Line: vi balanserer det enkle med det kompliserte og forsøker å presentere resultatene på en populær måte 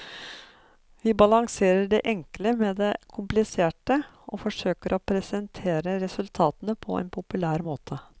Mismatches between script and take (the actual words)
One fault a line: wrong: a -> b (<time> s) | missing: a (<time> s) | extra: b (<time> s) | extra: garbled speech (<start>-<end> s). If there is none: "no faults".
no faults